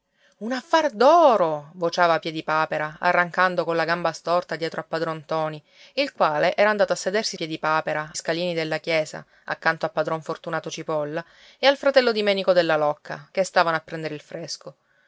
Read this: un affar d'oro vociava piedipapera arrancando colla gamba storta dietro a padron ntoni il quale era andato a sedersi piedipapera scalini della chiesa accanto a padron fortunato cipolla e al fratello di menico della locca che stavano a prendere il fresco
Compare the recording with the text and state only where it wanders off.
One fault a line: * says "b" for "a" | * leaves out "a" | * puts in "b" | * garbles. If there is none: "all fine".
all fine